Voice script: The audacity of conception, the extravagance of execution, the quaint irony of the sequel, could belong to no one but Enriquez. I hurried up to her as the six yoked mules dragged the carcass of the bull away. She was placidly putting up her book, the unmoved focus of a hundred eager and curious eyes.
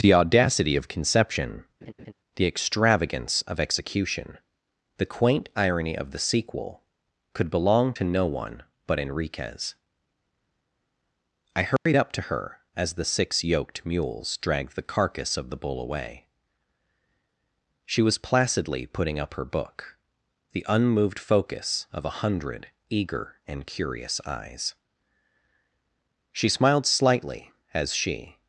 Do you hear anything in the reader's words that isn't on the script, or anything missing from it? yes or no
yes